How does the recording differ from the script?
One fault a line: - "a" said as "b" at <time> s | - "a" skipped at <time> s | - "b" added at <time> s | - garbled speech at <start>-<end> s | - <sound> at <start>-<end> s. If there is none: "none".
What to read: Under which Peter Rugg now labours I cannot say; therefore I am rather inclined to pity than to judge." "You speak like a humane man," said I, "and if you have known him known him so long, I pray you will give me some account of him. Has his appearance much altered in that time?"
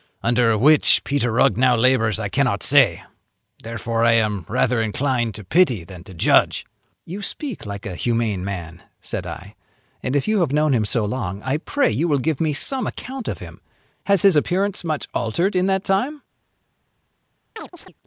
- "known him" skipped at 10.8 s
- chirp at 17.6-17.9 s